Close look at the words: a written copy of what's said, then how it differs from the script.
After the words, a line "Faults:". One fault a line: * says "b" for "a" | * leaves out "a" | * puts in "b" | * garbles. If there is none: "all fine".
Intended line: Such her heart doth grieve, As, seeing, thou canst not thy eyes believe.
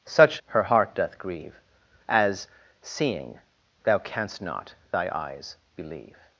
Such her heart doth grieve, As, seeing, thou canst not thy eyes believe.
Faults:
all fine